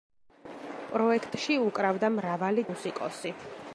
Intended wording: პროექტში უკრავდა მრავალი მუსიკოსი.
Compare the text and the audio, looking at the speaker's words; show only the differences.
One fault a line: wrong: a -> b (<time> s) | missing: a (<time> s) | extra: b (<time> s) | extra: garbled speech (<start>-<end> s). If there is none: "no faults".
no faults